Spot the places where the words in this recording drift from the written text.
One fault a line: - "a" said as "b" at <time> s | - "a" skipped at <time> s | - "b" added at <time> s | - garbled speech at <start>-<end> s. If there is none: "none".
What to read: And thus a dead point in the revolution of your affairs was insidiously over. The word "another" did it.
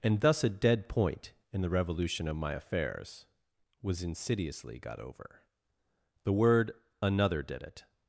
- "your" said as "my" at 2.4 s
- "got" added at 4.8 s